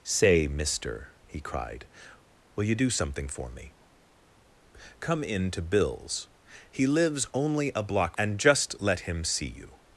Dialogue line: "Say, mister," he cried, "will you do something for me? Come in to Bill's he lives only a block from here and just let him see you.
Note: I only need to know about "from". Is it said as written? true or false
false